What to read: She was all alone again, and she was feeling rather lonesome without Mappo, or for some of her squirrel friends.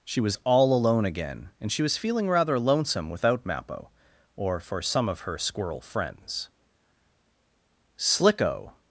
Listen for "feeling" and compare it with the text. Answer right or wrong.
right